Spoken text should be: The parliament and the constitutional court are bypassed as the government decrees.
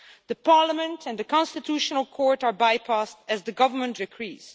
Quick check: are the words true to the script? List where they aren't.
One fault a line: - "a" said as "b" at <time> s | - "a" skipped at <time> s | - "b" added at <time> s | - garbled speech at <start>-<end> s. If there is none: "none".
none